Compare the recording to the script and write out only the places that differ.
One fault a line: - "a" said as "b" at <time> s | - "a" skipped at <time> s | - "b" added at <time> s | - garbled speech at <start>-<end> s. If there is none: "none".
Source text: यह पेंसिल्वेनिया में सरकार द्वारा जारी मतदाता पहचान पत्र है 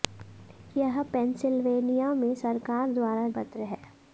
- "जारी मतदाता पहचान" skipped at 3.3 s